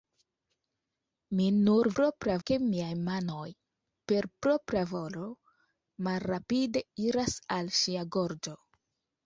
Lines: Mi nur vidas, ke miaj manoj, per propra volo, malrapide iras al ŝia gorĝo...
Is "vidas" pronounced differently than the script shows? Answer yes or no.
yes